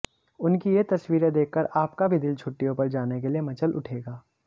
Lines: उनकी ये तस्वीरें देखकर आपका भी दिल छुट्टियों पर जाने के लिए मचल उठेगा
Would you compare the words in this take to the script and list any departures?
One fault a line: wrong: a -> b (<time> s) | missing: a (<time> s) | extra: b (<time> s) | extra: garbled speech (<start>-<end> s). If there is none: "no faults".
no faults